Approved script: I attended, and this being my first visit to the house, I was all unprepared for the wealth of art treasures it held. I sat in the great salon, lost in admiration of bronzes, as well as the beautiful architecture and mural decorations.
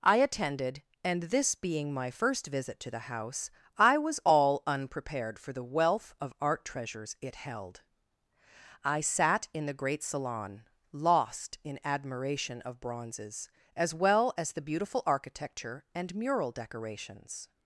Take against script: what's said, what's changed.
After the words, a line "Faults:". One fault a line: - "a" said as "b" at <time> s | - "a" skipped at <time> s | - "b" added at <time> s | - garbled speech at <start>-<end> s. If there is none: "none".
I attended, and this being my first visit to the house, I was all unprepared for the wealth of art treasures it held. I sat in the great salon, lost in admiration of bronzes, as well as the beautiful architecture and mural decorations.
Faults:
none